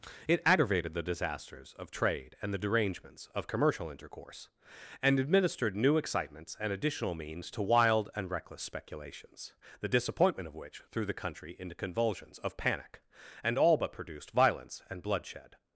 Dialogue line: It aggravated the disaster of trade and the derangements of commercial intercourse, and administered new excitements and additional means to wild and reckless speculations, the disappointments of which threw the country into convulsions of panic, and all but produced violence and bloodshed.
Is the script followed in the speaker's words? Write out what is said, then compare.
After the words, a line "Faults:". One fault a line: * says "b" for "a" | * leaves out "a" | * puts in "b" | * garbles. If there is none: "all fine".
It aggravated the disasters of trade and the derangements of commercial intercourse, and administered new excitements and additional means to wild and reckless speculations, the disappointment of which threw the country into convulsions of panic, and all but produced violence and bloodshed.
Faults:
* says "disasters" for "disaster"
* says "disappointment" for "disappointments"